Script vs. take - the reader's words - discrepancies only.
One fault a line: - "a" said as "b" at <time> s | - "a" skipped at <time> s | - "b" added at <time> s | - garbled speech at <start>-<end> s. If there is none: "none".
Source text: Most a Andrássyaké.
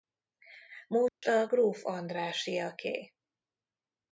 - "gróf" added at 1.4 s